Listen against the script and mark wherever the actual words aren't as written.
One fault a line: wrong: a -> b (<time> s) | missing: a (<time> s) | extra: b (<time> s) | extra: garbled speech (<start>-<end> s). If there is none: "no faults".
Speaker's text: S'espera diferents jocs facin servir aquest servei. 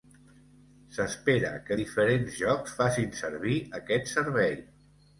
extra: que (1.7 s)